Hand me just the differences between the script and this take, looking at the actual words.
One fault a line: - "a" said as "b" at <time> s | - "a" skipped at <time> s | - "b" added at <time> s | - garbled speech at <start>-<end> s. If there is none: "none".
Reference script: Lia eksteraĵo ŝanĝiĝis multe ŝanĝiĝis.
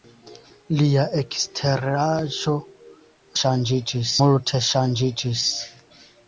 none